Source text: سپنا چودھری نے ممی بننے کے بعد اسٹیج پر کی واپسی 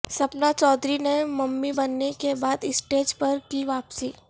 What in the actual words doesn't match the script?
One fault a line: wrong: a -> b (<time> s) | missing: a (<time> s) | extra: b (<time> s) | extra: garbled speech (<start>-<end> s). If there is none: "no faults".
no faults